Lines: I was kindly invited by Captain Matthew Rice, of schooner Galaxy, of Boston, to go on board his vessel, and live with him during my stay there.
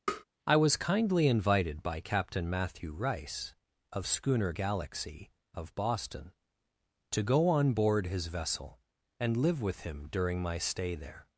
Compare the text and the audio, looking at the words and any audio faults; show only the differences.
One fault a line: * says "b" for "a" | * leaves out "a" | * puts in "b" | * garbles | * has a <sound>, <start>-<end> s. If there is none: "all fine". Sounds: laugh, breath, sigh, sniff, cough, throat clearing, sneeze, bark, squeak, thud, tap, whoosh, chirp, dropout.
* has a tap, 0.1-0.2 s